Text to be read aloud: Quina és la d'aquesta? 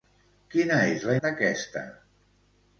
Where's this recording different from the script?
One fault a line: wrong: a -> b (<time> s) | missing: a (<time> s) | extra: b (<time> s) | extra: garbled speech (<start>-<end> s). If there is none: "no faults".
no faults